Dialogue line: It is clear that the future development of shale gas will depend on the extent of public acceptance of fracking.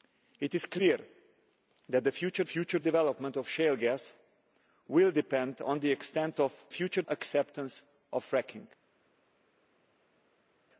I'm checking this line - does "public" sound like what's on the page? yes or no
no